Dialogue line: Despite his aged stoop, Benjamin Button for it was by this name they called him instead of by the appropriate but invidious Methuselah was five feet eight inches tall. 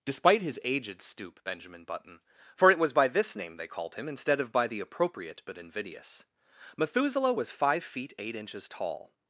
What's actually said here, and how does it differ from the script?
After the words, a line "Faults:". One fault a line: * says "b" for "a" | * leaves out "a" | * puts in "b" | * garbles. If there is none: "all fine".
Despite his aged stoop, Benjamin Button for it was by this name they called him instead of by the appropriate but invidious Methuselah was five feet eight inches tall.
Faults:
all fine